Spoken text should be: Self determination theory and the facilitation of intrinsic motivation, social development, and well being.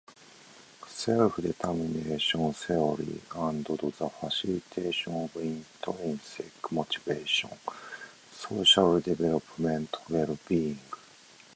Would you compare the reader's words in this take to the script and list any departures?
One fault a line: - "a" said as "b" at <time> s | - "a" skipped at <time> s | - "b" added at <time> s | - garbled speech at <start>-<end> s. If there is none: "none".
- "the" added at 3.8 s
- "and" skipped at 10.0 s